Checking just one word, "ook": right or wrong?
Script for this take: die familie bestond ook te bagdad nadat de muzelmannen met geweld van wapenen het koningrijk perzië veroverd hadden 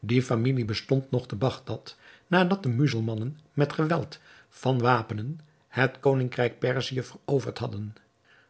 wrong